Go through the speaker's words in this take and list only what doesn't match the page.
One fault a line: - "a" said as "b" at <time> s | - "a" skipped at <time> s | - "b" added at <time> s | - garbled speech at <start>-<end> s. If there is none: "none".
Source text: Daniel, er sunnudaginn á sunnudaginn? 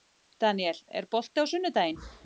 - "sunnudaginn" said as "bolti" at 1.2 s